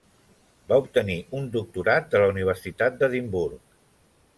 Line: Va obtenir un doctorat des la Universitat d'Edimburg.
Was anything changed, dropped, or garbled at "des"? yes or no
yes